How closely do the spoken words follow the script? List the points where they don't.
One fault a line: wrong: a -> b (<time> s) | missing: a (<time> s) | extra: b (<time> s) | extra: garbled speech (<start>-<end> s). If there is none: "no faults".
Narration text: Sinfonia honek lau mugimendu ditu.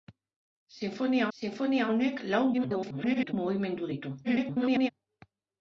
extra: sinfonia (1.4 s)
extra: garbled speech (2.5-3.3 s)
extra: garbled speech (4.2-4.9 s)